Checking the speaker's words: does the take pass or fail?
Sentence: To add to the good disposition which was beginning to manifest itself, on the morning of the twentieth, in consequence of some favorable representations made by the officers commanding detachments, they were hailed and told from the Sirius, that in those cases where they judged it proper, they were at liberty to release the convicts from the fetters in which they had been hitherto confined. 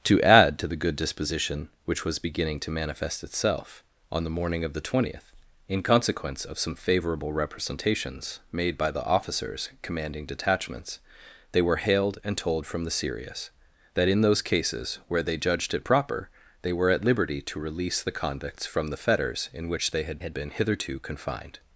fail